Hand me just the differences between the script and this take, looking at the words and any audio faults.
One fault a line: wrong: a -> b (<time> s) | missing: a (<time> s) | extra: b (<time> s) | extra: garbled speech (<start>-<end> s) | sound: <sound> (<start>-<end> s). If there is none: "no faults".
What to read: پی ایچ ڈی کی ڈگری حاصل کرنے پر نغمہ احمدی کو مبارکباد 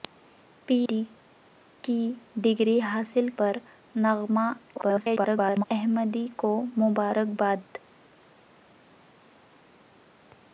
missing: ایچ (0.8 s)
missing: کرنے (3.3 s)
extra: garbled speech (4.8-5.6 s)